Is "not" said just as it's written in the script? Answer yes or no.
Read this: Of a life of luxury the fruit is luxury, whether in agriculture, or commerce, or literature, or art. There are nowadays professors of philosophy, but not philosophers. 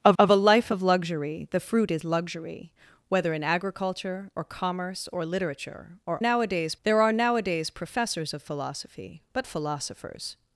no